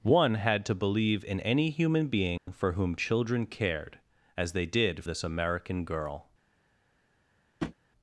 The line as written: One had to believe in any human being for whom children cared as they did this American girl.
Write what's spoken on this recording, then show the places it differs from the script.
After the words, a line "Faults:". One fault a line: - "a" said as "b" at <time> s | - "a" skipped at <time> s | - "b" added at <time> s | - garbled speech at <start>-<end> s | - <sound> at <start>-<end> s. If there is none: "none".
One had to believe in any human being for whom children cared as they did this American girl.
Faults:
- dropout at 2.4-2.5 s
- tap at 7.6-7.7 s